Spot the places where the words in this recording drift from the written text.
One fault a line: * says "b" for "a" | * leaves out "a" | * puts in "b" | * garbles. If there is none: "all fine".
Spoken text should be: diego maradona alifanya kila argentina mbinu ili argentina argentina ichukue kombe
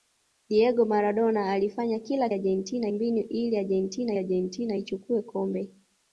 all fine